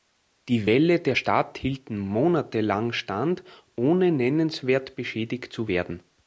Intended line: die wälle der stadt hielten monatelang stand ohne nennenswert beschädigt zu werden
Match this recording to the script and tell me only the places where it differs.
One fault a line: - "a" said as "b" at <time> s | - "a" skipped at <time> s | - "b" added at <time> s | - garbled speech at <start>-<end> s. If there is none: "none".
none